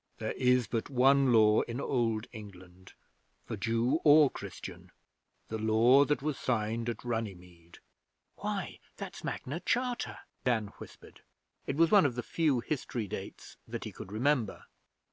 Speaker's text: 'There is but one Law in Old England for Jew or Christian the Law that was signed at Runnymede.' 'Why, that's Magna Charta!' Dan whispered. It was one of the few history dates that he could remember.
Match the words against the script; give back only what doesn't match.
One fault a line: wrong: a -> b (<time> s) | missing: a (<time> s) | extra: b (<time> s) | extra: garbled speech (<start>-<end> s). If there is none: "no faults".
no faults